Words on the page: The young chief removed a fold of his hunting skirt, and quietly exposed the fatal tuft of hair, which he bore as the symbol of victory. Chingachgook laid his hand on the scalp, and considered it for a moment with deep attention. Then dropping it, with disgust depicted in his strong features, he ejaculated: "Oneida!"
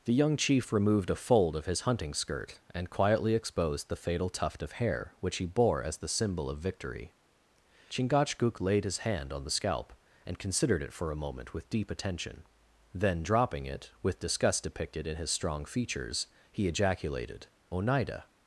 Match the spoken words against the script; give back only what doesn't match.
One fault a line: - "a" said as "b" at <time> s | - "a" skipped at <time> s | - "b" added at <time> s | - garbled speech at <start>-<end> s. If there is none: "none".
none